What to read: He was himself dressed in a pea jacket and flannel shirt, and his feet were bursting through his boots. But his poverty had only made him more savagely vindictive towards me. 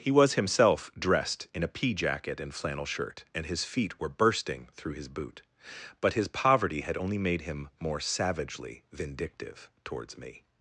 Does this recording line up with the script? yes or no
no